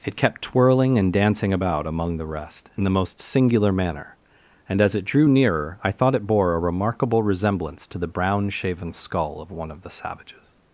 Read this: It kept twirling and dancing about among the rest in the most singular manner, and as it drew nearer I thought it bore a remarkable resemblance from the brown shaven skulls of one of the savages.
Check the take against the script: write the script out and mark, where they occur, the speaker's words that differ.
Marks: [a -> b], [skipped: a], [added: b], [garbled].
It kept twirling and dancing about among the rest in the most singular manner, and as it drew nearer I thought it bore a remarkable resemblance [from -> to] the brown shaven [skulls -> skull] of one of the savages.